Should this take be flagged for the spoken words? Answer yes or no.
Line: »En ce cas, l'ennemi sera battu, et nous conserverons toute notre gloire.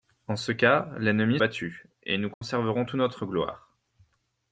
yes